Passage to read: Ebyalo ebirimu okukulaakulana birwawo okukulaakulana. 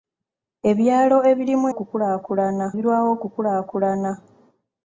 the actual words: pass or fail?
pass